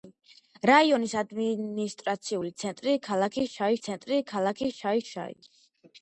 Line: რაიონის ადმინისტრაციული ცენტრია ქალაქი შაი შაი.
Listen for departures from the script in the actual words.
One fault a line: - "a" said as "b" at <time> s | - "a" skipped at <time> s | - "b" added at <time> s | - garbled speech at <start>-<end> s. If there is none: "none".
- "ცენტრია ქალაქი შაი" added at 3.9 s